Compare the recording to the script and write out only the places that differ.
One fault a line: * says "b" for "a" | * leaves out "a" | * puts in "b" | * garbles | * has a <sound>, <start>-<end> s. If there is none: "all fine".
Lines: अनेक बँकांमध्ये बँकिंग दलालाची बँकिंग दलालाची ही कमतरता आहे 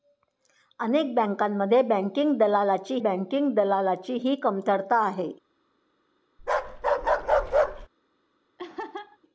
* has a bark, 6.4-7.9 s
* has a laugh, 8.6-9.2 s